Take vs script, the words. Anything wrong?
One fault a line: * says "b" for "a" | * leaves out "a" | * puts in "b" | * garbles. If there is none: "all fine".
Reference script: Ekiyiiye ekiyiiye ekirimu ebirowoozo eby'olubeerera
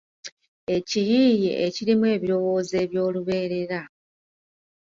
* leaves out "ekiyiiye"